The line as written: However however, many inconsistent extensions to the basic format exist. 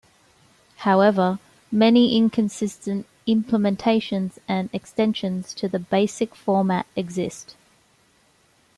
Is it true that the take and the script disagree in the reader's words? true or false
true